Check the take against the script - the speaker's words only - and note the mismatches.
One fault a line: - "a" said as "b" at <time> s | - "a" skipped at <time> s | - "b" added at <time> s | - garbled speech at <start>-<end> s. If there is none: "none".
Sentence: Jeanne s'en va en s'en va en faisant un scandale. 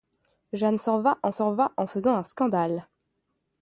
none